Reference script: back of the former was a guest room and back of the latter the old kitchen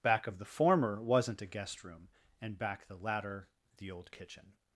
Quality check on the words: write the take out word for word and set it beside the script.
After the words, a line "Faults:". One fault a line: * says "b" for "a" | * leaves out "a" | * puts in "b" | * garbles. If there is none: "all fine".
back of the former wasn't a guest room and back the latter the old kitchen
Faults:
* says "wasn't" for "was"
* leaves out "of"